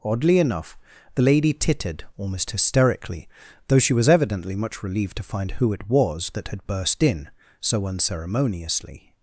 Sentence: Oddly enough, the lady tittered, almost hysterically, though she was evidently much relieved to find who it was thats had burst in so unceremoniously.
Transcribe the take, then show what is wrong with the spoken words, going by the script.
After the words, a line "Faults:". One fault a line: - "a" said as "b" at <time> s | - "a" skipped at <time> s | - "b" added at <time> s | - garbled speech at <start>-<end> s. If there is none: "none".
Oddly enough, the lady tittered, almost hysterically, though she was evidently much relieved to find who it was that had burst in so unceremoniously.
Faults:
- "thats" said as "that" at 6.3 s